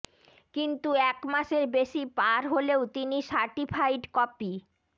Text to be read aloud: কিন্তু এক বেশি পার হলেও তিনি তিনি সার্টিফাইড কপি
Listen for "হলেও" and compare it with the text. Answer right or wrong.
right